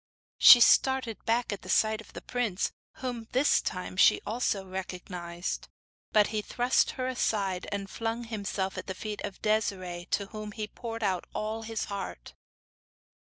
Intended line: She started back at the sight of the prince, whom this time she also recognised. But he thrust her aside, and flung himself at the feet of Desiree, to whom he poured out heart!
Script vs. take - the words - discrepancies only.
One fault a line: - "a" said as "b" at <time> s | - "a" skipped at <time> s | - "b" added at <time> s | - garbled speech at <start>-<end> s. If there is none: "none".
- "all his" added at 11.4 s